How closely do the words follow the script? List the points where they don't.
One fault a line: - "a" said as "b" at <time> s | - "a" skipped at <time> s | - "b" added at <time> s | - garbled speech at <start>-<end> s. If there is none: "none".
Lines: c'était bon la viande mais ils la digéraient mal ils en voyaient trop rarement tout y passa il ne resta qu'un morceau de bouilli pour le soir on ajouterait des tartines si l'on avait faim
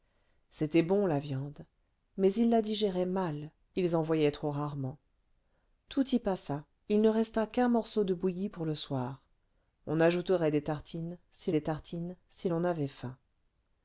- "des tartines si" added at 11.5 s